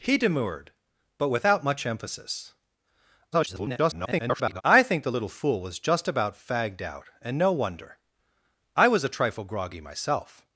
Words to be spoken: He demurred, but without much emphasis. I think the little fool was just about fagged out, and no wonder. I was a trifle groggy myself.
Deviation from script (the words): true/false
true